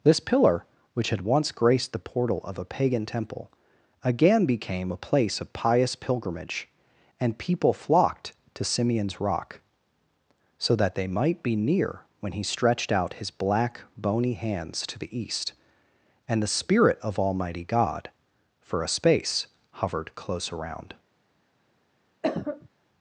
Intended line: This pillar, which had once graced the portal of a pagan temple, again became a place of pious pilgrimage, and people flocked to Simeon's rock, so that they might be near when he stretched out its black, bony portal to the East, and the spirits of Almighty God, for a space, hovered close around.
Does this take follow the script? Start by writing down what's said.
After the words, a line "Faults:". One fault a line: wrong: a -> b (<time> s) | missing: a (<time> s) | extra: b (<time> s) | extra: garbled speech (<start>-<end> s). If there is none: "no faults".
This pillar, which had once graced the portal of a pagan temple, again became a place of pious pilgrimage, and people flocked to Simeon's rock, so that they might be near when he stretched out his black, bony hands to the East, and the spirit of Almighty God, for a space, hovered close around.
Faults:
wrong: its -> his (13.2 s)
wrong: portal -> hands (14.3 s)
wrong: spirits -> spirit (16.5 s)